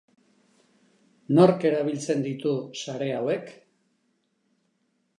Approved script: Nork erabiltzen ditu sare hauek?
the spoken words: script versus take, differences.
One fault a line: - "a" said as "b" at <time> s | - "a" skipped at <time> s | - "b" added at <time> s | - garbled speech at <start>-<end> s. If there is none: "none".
none